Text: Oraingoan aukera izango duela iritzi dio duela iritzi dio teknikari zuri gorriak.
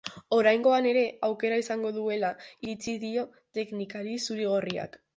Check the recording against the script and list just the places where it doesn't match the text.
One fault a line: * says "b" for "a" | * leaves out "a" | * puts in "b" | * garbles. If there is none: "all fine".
* puts in "ere"
* leaves out "duela iritzi dio"